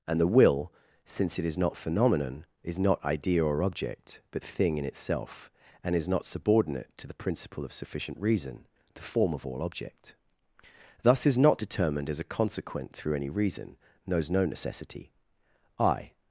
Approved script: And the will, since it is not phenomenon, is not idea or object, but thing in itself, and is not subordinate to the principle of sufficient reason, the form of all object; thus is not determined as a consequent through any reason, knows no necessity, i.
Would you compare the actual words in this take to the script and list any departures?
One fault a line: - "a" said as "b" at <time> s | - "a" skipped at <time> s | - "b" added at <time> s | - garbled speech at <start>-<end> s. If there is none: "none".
none